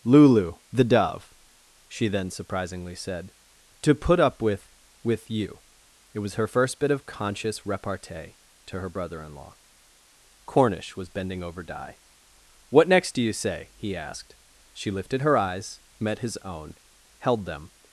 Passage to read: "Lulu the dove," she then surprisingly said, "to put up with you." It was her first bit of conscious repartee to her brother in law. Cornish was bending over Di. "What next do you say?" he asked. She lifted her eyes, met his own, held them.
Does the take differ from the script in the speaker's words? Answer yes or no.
yes